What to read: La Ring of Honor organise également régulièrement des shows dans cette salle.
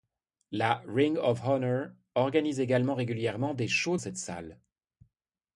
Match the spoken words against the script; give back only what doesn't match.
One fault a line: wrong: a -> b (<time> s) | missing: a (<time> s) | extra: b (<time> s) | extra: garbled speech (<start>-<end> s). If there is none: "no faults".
missing: dans (4.0 s)